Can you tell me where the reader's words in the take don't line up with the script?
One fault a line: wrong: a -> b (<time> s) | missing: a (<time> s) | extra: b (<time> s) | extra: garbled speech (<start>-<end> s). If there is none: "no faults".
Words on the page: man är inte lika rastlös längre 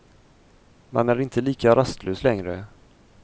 no faults